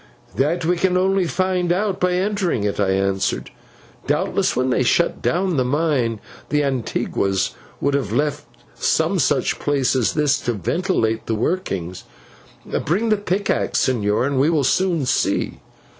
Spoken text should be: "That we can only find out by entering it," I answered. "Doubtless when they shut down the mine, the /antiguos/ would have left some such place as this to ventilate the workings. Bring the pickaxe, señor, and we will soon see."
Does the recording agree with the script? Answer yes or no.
yes